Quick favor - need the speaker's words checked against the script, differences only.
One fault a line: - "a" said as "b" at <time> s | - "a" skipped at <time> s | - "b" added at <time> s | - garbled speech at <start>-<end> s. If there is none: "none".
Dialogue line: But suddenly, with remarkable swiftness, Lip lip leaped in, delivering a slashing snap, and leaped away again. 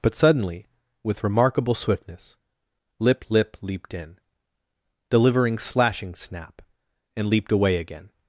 - "a" skipped at 5.6 s